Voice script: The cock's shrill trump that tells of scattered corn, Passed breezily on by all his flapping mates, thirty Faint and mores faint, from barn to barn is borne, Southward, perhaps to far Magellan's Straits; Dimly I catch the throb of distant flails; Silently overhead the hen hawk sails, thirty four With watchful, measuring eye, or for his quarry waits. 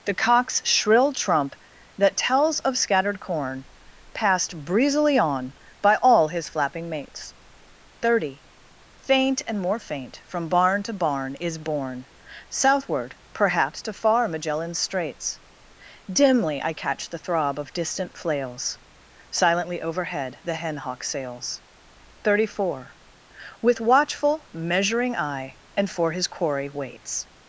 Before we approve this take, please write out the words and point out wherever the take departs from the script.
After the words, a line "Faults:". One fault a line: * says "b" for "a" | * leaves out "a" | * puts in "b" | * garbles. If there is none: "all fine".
The cock's shrill trump that tells of scattered corn, Passed breezily on by all his flapping mates, thirty Faint and more faint, from barn to barn is borne, Southward, perhaps to far Magellan's Straits; Dimly I catch the throb of distant flails; Silently overhead the hen hawk sails, thirty four With watchful, measuring eye, and for his quarry waits.
Faults:
* says "more" for "mores"
* says "and" for "or"